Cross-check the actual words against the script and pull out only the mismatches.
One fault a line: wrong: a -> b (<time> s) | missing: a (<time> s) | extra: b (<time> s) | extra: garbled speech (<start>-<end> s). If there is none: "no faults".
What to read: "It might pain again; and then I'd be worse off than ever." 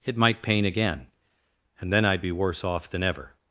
no faults